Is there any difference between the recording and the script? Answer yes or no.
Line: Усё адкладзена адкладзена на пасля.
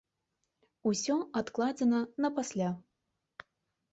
yes